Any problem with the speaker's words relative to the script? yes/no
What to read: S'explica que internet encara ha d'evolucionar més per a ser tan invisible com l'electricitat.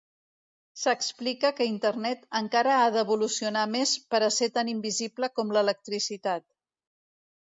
no